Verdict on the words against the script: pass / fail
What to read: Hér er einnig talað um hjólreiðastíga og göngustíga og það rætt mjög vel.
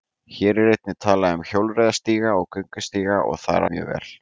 fail